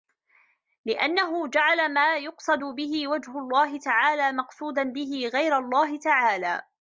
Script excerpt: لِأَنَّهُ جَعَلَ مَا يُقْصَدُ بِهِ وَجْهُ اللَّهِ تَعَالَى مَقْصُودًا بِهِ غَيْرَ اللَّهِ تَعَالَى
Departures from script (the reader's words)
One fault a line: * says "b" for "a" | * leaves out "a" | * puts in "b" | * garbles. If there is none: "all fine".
all fine